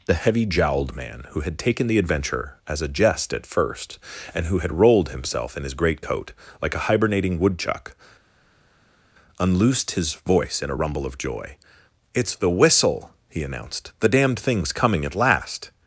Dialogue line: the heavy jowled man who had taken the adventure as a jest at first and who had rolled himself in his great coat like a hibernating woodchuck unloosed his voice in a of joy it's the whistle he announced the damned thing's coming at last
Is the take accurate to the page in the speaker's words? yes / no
no